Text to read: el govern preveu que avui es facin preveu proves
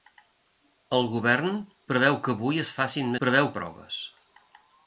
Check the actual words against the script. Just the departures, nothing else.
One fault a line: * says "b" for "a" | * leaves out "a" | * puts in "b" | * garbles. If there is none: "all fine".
all fine